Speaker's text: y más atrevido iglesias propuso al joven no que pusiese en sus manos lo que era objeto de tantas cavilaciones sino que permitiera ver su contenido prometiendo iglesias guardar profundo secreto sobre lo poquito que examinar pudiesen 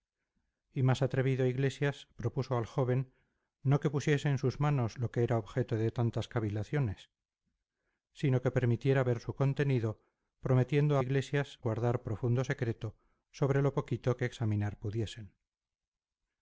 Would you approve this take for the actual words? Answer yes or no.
yes